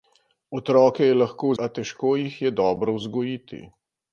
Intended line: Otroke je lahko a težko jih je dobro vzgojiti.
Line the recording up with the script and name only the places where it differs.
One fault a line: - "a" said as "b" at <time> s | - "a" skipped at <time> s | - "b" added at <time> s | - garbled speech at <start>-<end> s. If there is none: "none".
none